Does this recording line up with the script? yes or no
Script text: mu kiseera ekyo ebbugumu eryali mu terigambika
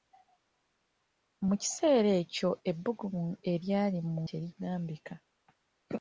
yes